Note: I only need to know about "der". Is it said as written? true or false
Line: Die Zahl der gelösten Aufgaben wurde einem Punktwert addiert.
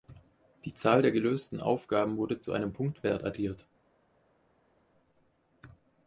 true